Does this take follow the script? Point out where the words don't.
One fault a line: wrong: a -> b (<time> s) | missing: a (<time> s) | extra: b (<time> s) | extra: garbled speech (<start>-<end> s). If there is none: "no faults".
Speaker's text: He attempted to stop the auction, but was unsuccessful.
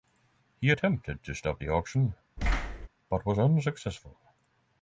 no faults